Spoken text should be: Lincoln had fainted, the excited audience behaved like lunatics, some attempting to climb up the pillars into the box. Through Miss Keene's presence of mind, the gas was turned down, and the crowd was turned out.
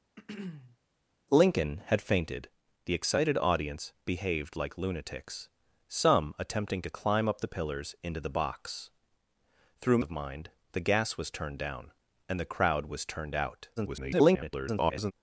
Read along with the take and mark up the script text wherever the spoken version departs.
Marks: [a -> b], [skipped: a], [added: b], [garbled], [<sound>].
[throat clearing] Lincoln had fainted, the excited audience behaved like lunatics, some attempting to climb up the pillars into the box. Through [skipped: Miss Keene's presence] of mind, the gas was turned down, and the crowd was turned out. [garbled]